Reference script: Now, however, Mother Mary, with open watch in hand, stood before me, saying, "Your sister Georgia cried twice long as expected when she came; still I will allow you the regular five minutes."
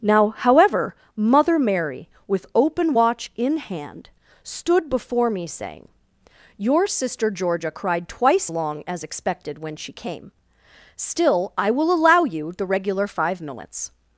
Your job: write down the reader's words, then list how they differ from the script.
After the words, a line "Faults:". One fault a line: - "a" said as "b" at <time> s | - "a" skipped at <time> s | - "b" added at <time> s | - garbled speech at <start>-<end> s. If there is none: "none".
Now, however, Mother Mary, with open watch in hand, stood before me, saying, "Your sister Georgia cried twice long as expected when she came; still I will allow you the regular five minutes."
Faults:
none